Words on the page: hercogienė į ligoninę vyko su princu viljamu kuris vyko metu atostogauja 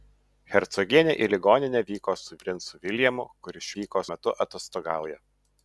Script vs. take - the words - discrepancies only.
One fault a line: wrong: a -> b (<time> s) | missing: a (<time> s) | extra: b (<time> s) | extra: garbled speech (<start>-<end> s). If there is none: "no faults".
no faults